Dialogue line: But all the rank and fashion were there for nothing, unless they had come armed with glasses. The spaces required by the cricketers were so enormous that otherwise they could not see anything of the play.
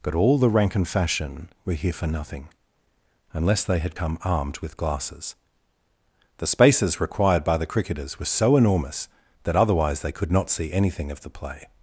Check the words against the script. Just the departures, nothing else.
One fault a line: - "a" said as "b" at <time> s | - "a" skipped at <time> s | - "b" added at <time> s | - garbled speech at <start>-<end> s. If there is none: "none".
- "there" said as "here" at 1.7 s